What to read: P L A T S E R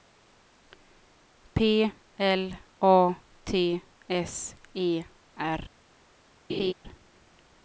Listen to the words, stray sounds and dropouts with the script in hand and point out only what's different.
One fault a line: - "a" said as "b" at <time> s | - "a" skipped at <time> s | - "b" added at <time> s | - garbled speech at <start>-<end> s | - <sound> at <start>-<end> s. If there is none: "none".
- laugh at 6.5-6.7 s